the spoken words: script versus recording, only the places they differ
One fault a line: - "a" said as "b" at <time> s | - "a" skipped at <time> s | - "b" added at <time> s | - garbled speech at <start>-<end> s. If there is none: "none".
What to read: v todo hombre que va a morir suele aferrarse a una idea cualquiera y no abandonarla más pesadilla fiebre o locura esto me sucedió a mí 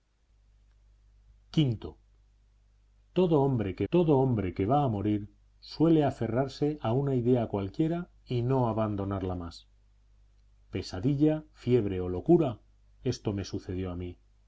- "todo hombre que" added at 3.9 s